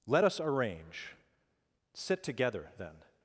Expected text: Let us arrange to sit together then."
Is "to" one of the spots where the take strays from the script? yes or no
yes